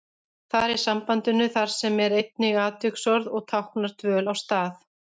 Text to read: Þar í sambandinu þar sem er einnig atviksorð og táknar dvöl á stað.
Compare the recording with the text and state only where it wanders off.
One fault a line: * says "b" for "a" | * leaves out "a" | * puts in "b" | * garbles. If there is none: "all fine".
all fine